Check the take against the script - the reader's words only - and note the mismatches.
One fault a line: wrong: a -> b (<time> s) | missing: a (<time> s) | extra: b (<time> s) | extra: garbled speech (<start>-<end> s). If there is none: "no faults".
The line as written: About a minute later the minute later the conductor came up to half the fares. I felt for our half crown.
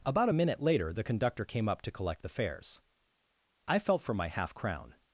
missing: minute later the (1.0 s)
wrong: half -> collect (1.9 s)
wrong: our -> my (4.1 s)